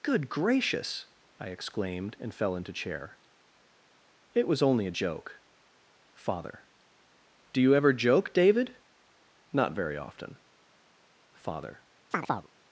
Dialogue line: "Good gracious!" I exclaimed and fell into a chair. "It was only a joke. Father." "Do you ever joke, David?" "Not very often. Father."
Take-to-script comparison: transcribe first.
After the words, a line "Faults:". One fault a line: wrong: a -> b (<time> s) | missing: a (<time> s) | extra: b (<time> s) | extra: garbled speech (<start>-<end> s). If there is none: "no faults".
"Good gracious!" I exclaimed and fell into chair. "It was only a joke. Father." "Do you ever joke, David?" "Not very often. Father."
Faults:
missing: a (2.7 s)